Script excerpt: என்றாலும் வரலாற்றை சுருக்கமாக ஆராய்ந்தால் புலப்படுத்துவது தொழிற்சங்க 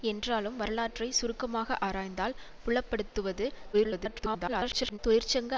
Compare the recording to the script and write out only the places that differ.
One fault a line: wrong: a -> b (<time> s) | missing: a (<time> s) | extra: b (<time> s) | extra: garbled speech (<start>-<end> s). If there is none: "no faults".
extra: garbled speech (3.7-5.0 s)